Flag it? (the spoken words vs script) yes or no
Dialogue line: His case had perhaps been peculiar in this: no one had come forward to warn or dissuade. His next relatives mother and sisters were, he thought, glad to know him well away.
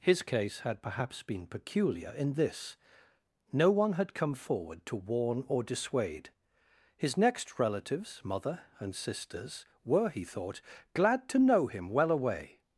no